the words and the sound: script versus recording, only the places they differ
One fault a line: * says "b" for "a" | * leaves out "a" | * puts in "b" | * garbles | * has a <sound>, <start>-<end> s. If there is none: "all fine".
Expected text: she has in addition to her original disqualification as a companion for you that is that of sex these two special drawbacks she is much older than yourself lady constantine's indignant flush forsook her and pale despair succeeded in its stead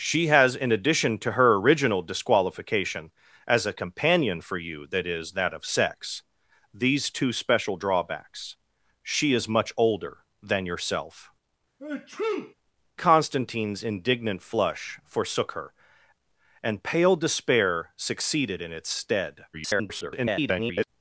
* leaves out "lady"
* has a sneeze, 11.8-12.5 s
* garbles